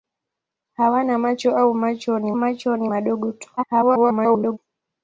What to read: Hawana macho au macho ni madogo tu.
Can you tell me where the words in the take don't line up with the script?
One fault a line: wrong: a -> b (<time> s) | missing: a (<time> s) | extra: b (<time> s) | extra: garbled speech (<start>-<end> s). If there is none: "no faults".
extra: macho ni (2.3 s)
extra: garbled speech (3.6-4.6 s)